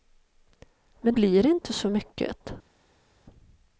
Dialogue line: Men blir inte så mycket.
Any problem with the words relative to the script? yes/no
no